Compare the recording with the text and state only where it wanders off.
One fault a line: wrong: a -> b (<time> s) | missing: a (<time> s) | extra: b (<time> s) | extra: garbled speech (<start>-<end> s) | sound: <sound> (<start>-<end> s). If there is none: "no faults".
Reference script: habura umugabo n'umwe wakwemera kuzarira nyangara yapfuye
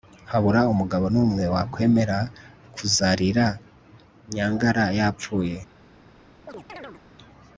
sound: chirp (6.5-7.0 s)